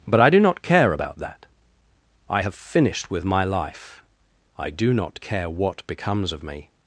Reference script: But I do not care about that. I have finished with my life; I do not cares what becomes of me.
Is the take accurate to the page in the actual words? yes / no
no